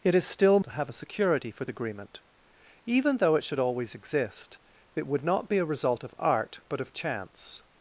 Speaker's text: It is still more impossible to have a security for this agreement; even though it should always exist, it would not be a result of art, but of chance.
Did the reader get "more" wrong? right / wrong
wrong